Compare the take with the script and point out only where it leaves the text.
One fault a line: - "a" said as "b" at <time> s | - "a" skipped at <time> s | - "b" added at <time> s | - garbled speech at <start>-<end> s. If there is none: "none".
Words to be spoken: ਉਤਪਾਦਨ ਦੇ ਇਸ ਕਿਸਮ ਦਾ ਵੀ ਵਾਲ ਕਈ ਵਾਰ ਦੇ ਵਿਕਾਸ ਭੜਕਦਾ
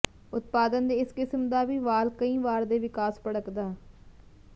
none